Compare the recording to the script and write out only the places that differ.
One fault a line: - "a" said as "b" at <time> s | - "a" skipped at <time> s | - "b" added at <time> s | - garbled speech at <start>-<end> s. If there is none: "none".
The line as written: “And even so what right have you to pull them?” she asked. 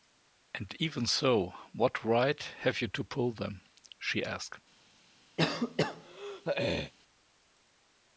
none